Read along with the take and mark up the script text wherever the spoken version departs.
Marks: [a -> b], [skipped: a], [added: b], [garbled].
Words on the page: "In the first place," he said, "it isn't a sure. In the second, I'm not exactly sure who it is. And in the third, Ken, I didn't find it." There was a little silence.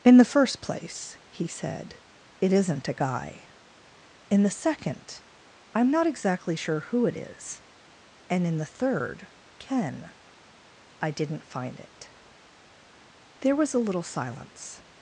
"In the first place," he said, "it isn't a [sure. -> guy] In the second, I'm not exactly sure who it is. And in the third, Ken, I didn't find it." There was a little silence.